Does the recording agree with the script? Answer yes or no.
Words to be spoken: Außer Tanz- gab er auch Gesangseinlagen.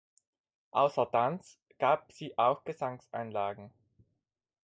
no